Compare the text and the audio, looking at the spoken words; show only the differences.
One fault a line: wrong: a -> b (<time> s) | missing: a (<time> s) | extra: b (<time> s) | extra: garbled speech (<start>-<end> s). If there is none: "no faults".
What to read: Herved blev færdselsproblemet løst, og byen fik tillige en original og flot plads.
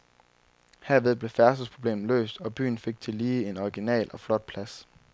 no faults